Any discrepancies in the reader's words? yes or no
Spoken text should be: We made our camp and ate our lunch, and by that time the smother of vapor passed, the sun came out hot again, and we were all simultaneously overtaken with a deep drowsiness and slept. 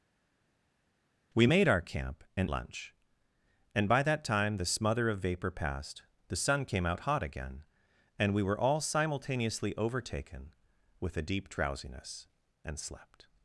yes